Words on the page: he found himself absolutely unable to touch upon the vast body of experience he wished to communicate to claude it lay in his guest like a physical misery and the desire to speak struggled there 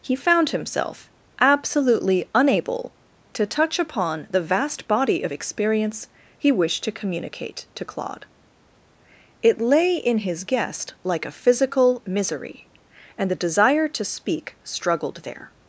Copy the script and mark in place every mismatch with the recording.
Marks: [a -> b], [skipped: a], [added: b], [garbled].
he found himself absolutely unable to touch upon the vast body of experience he wished to communicate to claude it lay in his guest like a physical misery and the desire to speak struggled there